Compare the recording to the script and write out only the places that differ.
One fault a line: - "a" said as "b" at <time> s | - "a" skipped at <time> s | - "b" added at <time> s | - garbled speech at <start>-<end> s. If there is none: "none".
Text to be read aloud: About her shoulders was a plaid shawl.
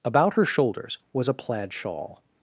none